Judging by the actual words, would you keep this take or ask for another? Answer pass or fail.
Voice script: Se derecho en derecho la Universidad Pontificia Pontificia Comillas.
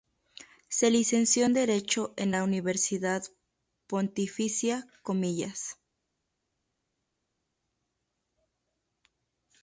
fail